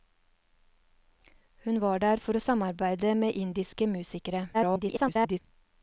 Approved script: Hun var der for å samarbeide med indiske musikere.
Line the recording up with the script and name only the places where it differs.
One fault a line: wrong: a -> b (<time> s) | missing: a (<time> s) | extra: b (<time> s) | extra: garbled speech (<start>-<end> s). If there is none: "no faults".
extra: garbled speech (4.5-5.4 s)